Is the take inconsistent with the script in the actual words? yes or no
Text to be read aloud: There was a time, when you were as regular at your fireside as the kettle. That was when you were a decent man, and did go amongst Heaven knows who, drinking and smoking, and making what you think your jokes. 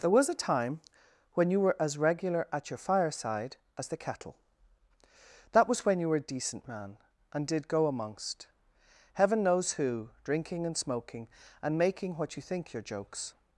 no